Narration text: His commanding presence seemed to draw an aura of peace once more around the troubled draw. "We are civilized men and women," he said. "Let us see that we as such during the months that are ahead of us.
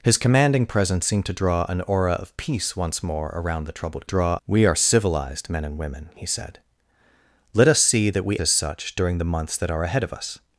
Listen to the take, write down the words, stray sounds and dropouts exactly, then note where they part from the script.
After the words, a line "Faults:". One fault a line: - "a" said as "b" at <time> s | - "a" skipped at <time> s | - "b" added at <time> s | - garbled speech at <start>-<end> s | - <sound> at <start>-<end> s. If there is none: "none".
His commanding presence seemed to draw an aura of peace once more around the troubled draw. "We are civilized men and women," he said. "Let us see that we as such during the months that are ahead of us.
Faults:
none